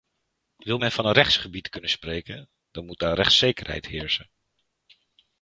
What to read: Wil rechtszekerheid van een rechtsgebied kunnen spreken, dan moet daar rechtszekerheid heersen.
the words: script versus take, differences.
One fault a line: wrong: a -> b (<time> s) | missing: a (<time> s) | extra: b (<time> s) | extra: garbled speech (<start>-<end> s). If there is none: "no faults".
wrong: rechtszekerheid -> men (0.7 s)